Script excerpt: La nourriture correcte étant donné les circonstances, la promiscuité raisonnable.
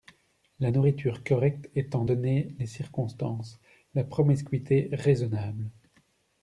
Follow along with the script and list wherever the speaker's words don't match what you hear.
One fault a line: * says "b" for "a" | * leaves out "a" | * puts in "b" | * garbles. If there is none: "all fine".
all fine